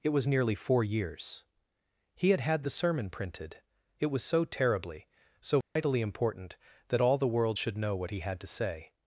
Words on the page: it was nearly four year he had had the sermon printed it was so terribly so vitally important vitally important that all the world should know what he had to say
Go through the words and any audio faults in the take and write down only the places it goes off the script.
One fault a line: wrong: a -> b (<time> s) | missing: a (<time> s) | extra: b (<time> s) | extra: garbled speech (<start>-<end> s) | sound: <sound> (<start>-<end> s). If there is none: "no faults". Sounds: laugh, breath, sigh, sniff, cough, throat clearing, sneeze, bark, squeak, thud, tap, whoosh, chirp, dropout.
wrong: year -> years (0.8 s)
sound: dropout (5.6-5.8 s)
missing: vitally important (6.6 s)